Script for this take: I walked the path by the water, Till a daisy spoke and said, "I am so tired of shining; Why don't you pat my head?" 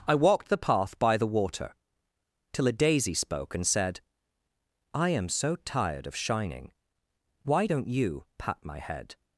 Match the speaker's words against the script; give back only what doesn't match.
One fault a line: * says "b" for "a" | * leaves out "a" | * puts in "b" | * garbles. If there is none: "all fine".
all fine